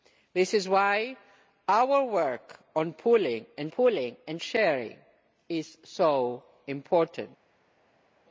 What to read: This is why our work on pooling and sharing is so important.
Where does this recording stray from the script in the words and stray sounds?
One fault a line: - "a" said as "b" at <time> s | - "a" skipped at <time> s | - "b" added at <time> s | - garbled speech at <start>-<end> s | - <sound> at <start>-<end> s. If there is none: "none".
- "pooling and" added at 3.7 s